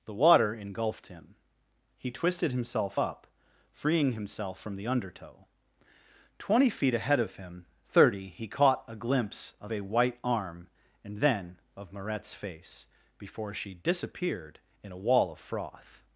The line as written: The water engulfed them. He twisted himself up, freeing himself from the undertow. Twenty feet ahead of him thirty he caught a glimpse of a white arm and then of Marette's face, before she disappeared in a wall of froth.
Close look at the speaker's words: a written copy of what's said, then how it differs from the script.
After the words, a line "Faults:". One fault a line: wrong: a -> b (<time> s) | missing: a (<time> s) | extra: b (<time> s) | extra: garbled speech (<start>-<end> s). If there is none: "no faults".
The water engulfed him. He twisted himself up, freeing himself from the undertow. Twenty feet ahead of him thirty he caught a glimpse of a white arm and then of Marette's face, before she disappeared in a wall of froth.
Faults:
wrong: them -> him (1.1 s)